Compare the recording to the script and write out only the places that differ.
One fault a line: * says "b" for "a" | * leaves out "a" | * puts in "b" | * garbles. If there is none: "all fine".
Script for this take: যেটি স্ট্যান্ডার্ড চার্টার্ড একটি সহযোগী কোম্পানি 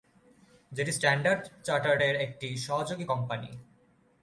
* puts in "এর"